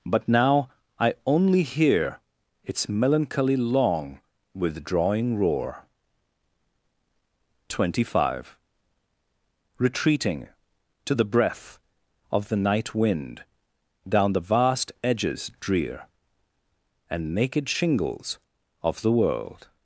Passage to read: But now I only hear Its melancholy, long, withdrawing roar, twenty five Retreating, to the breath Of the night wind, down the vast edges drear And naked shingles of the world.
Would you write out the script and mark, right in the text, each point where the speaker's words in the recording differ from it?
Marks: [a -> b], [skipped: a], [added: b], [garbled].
But now I only hear Its melancholy, long, withdrawing roar, twenty five Retreating, to the breath Of the night wind, down the vast edges drear And naked shingles of the world.